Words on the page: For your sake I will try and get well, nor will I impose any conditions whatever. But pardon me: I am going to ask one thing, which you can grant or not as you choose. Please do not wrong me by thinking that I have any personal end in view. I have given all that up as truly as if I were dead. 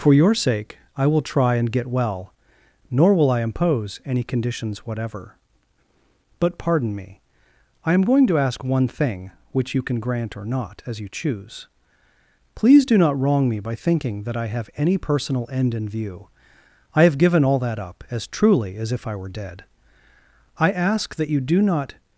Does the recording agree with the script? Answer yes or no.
no